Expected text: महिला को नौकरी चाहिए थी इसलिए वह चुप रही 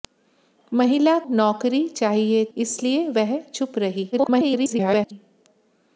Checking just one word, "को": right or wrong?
wrong